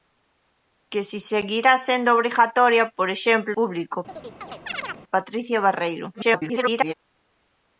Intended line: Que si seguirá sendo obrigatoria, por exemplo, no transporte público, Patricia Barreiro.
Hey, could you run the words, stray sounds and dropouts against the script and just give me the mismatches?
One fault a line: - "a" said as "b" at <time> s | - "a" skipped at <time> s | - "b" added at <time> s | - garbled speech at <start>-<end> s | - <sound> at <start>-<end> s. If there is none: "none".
- "no transporte" skipped at 3.5 s
- chirp at 4.1-5.0 s
- garbled speech at 6.1-6.9 s